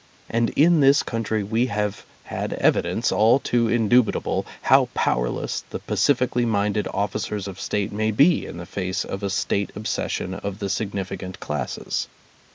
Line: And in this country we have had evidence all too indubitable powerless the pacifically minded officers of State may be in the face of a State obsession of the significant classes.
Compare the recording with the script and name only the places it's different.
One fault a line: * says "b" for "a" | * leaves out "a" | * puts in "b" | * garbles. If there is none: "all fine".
* puts in "how"